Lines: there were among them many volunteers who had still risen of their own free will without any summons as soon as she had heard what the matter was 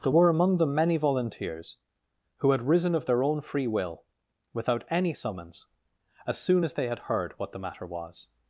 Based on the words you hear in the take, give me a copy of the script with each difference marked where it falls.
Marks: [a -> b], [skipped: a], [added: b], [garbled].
there were among them many volunteers who had [skipped: still] risen of their own free will without any summons as soon as [she -> they] had heard what the matter was